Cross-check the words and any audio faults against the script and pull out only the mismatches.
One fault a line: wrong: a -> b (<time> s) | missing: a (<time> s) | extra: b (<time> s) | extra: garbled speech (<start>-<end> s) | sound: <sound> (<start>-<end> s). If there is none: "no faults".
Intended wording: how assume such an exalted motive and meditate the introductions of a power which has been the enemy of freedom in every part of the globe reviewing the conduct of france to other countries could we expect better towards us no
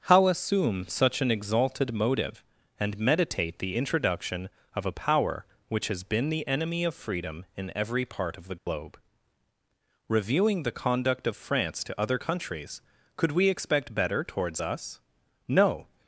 wrong: introductions -> introduction (3.8 s)
sound: dropout (8.6-8.7 s)